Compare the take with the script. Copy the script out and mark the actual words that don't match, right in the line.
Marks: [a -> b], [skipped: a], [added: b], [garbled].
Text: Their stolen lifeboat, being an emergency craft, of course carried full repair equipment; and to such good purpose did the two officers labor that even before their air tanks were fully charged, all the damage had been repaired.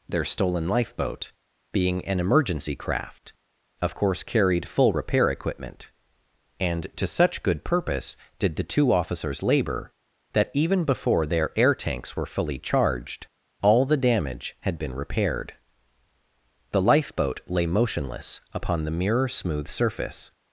Their stolen lifeboat, being an emergency craft, of course carried full repair equipment; and to such good purpose did the two officers labor that even before their air tanks were fully charged, all the damage had been repaired. [added: The lifeboat lay motionless upon the mirror smooth surface]